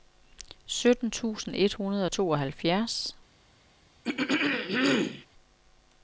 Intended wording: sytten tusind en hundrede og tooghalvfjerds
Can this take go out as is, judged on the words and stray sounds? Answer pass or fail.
fail